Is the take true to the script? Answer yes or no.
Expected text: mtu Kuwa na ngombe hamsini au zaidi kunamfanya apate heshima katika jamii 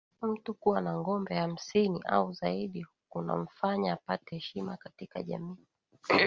yes